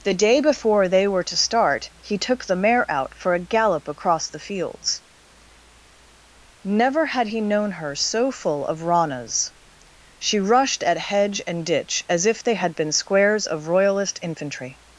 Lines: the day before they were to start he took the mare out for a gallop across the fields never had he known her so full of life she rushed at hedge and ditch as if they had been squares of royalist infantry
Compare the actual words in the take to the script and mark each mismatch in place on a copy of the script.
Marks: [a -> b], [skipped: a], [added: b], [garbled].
the day before they were to start he took the mare out for a gallop across the fields never had he known her so full of [life -> ranas] she rushed at hedge and ditch as if they had been squares of royalist infantry